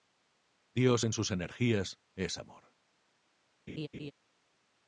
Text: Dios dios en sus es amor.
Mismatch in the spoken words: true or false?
true